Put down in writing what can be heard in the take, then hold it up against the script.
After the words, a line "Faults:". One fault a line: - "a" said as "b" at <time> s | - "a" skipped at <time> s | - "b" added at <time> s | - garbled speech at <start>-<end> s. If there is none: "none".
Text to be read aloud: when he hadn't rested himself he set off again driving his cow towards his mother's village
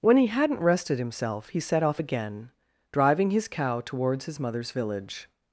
when he hadn't rested himself he set off again driving his cow towards his mother's village
Faults:
none